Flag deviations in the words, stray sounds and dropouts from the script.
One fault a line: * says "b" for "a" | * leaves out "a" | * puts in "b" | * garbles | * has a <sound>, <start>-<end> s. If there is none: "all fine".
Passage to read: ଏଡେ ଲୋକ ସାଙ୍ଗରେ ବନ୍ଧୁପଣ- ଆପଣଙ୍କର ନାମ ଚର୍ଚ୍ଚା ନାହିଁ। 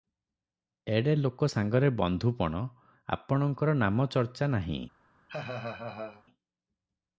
* has a laugh, 5.3-6.2 s